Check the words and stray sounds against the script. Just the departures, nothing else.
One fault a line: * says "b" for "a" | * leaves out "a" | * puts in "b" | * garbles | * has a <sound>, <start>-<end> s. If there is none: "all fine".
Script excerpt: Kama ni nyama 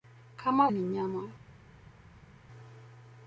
all fine